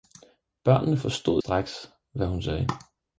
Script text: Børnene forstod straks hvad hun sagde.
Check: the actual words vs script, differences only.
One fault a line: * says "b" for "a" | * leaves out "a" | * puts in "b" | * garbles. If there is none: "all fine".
all fine